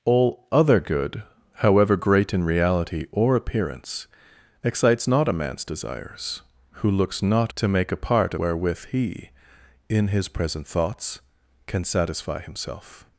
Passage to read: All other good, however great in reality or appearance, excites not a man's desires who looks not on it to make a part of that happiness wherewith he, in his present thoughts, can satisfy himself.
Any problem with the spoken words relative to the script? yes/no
yes